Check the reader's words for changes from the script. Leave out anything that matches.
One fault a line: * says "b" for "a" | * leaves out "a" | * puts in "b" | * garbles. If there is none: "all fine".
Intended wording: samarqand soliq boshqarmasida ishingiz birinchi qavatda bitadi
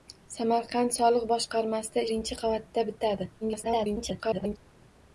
* leaves out "ishingiz"
* garbles